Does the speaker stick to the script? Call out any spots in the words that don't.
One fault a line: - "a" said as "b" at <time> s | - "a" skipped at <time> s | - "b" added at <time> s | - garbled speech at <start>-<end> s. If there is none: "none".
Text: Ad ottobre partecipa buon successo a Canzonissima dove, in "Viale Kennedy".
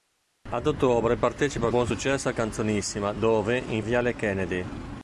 none